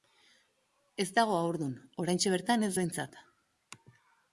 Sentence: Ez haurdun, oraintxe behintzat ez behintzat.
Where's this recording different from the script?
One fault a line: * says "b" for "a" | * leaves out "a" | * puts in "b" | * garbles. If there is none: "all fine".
* puts in "dago"
* says "bertan" for "behintzat"